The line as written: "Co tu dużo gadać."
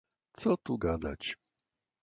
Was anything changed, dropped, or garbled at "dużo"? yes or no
yes